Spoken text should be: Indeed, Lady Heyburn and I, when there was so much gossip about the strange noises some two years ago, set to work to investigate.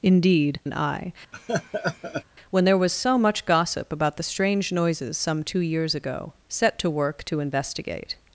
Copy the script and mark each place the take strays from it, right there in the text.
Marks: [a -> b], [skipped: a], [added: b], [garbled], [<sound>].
Indeed, [skipped: Lady Heyburn] and I, [laugh] when there was so much gossip about the strange noises some two years ago, set to work to investigate.